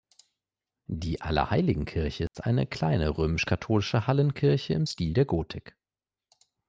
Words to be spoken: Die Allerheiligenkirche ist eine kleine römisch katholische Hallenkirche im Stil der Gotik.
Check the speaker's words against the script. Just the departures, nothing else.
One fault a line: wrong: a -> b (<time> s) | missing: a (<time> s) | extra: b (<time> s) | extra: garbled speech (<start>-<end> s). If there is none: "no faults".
no faults